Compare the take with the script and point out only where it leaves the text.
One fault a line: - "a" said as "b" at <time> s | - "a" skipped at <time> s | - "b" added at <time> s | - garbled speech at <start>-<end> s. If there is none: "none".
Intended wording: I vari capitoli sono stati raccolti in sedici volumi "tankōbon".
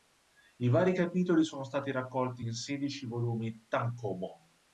none